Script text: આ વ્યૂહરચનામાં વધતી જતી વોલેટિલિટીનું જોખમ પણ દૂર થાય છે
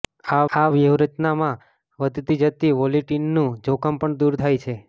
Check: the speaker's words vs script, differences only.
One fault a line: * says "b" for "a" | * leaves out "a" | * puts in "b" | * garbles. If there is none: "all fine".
* puts in "આ"